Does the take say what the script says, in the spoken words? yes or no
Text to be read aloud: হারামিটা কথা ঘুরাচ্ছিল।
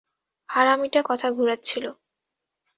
yes